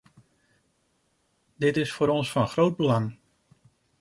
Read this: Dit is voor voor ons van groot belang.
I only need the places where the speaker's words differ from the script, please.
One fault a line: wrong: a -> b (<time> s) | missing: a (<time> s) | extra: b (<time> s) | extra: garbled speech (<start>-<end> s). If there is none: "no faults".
missing: voor (2.1 s)